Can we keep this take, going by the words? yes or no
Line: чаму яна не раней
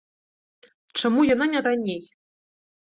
yes